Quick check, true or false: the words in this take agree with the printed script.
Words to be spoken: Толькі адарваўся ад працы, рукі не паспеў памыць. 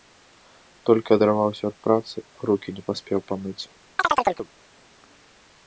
true